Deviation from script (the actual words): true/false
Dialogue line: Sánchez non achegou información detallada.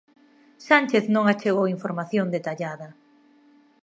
false